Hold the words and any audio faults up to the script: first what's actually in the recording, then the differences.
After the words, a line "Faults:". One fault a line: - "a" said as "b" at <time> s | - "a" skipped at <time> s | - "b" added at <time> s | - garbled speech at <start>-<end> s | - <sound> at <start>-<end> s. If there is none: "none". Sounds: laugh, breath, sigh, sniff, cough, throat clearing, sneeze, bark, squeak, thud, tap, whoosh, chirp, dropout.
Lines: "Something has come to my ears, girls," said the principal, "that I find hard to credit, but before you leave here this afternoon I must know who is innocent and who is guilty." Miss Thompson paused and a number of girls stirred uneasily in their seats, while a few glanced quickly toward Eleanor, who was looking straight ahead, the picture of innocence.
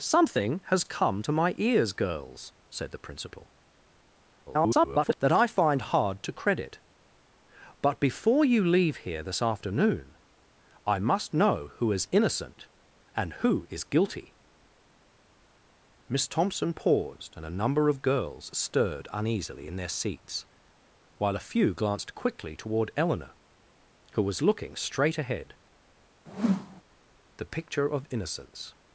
"Something has come to my ears, girls," said the principal, [garbled] "that I find hard to credit, but before you leave here this afternoon I must know who is innocent and who is guilty." Miss Thompson paused and a number of girls stirred uneasily in their seats, while a few glanced quickly toward Eleanor, who was looking straight ahead, the picture of innocence.
Faults:
- garbled speech at 4.5-5.2 s
- whoosh at 26.3-26.8 s